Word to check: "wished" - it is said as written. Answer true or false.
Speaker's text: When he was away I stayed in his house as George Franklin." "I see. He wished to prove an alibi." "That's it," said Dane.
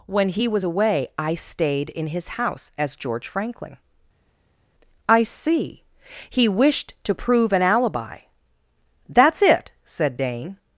true